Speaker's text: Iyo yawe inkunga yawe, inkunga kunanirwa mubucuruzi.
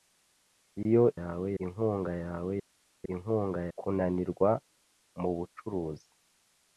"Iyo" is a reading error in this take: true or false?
false